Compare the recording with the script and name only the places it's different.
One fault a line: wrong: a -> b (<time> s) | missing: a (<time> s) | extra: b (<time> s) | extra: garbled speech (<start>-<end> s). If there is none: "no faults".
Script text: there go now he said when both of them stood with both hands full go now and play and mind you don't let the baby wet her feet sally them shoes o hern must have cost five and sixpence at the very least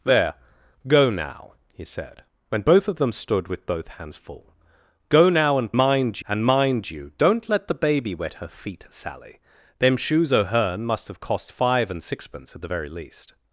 wrong: play -> mind (5.8 s)